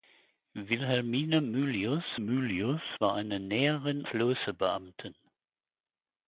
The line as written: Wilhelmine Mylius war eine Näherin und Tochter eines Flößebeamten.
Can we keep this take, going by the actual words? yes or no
no